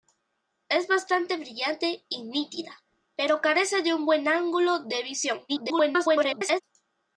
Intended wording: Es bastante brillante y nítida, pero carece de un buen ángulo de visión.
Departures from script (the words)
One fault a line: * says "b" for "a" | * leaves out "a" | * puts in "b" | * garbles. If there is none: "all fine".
* garbles